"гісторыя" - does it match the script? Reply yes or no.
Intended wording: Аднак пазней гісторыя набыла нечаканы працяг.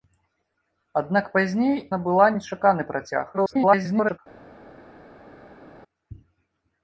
no